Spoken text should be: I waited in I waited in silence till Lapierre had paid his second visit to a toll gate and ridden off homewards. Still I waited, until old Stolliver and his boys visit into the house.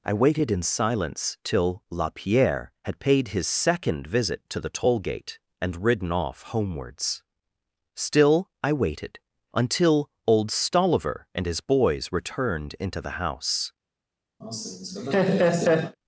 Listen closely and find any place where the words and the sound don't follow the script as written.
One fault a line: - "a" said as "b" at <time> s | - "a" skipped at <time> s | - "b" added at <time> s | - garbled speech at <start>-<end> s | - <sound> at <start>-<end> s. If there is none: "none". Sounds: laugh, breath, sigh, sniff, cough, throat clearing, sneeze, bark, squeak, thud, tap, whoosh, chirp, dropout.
- "I waited in" skipped at 0.6 s
- "a" said as "the" at 4.6 s
- "visit" said as "returned" at 12.1 s
- laugh at 14.4-16.0 s